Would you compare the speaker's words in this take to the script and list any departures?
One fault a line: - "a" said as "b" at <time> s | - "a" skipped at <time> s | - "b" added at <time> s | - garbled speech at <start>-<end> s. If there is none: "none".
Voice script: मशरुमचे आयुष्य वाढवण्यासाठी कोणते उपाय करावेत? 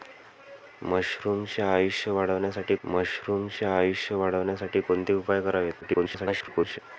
- "मशरुमचे आयुष्य वाढवण्यासाठी" added at 2.9 s
- garbled speech at 5.8-6.8 s